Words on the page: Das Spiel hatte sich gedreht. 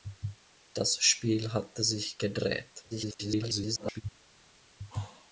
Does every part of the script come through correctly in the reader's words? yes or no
no